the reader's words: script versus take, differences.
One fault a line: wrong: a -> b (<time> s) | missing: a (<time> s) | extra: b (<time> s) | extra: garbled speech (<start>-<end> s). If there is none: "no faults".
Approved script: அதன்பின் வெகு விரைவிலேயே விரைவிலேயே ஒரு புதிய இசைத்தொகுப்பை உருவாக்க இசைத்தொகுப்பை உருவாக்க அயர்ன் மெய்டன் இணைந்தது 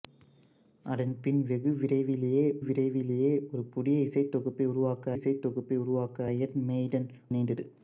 no faults